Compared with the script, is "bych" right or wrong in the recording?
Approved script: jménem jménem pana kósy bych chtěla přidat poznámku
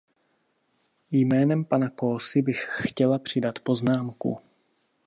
right